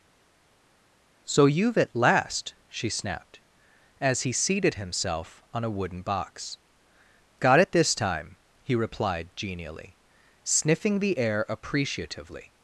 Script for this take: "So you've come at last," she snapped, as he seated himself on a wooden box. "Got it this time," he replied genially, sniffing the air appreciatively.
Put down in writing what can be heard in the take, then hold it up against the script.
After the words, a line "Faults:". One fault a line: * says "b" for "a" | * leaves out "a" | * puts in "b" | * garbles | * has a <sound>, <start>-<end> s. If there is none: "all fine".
"So you've at last," she snapped, as he seated himself on a wooden box. "Got it this time," he replied genially, sniffing the air appreciatively.
Faults:
* leaves out "come"